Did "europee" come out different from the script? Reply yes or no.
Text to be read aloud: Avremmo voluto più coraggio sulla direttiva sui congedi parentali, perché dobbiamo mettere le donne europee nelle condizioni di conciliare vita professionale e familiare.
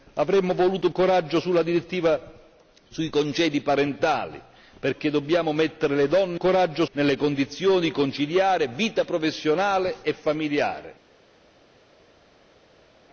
yes